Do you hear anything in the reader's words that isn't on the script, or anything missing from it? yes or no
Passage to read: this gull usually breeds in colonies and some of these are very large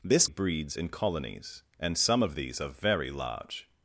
yes